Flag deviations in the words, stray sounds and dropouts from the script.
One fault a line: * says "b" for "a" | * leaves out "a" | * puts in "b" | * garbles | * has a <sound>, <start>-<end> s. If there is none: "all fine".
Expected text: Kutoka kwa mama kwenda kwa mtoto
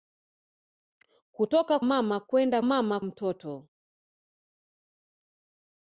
* leaves out "kwa"
* says "mama" for "kwa"